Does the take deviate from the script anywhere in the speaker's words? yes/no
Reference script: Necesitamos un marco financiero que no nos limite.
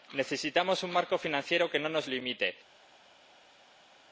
no